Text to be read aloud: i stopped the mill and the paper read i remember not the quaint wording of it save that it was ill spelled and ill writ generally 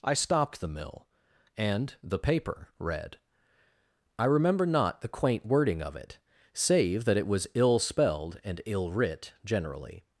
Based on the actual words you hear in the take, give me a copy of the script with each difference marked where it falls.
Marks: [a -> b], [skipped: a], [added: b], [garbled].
i stopped the mill and the paper read i remember not the quaint wording of it save that it was ill spelled and ill writ generally